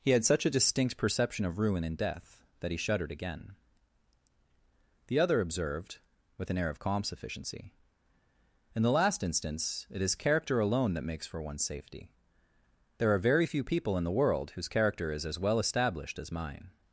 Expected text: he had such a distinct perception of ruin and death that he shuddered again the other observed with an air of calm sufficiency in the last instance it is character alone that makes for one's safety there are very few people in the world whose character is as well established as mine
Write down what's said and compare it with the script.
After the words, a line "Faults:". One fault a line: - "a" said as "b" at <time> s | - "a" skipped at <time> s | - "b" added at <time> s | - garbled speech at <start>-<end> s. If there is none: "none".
he had such a distinct perception of ruin and death that he shuddered again the other observed with an air of calm sufficiency in the last instance it is character alone that makes for one's safety there are very few people in the world whose character is as well established as mine
Faults:
none